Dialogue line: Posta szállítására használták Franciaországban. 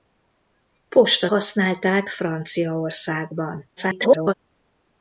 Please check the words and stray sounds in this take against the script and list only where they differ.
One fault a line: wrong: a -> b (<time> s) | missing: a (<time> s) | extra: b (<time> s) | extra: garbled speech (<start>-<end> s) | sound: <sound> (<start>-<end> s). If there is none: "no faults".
missing: szállítására (1.3 s)
extra: garbled speech (3.8-4.3 s)